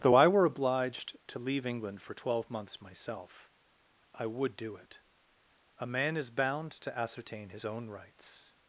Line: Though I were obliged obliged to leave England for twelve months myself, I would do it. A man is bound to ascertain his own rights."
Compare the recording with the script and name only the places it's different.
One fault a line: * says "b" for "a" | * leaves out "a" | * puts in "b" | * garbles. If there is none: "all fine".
* leaves out "obliged"